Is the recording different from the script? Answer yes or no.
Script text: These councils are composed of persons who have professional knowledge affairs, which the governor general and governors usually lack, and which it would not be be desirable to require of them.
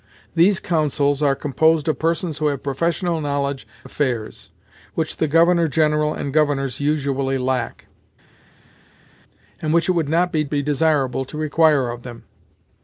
no